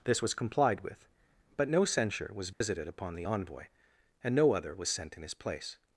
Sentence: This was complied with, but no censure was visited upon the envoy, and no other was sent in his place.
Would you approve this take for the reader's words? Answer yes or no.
yes